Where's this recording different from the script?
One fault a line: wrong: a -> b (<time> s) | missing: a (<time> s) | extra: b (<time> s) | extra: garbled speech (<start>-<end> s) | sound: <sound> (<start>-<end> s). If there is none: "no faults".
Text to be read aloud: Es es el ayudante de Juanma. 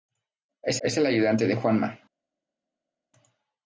no faults